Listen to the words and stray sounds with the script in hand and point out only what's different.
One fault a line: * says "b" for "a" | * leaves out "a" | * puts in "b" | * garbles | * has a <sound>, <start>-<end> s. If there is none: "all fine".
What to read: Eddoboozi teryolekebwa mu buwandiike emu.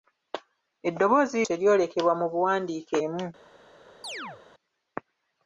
* has a chirp, 4.0-4.4 s